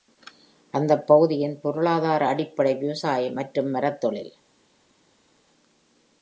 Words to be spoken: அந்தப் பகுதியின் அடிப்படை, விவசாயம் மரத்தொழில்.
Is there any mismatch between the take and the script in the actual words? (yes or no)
yes